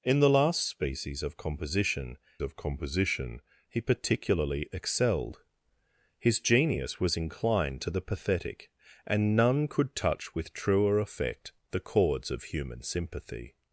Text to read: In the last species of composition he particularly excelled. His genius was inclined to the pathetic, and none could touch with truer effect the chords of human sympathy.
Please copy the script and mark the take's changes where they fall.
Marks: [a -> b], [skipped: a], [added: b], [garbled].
In the last species of composition [added: of composition] he particularly excelled. His genius was inclined to the pathetic, and none could touch with truer effect the chords of human sympathy.